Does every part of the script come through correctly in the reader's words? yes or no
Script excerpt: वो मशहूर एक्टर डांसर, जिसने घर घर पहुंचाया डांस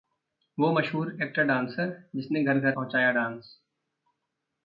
yes